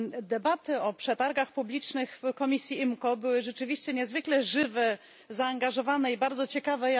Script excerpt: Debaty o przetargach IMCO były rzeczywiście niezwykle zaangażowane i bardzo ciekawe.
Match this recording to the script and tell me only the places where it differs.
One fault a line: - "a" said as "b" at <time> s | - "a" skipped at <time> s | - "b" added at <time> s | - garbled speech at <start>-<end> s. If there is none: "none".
- "publicznych w komisji" added at 1.5 s
- "żywe" added at 4.4 s